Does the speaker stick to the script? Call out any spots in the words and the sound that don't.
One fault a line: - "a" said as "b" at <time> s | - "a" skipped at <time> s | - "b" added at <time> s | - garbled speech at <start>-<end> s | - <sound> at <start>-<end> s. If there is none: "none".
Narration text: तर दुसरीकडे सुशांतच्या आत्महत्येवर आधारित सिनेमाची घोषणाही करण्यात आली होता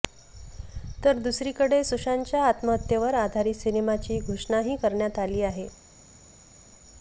- "होता" said as "आहे" at 5.4 s